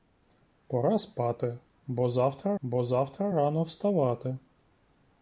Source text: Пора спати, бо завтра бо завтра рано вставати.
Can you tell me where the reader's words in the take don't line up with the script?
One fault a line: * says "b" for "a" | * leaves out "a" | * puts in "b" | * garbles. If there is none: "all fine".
all fine